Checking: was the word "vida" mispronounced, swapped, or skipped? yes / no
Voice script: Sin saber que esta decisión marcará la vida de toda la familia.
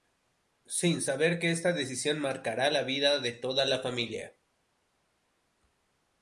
no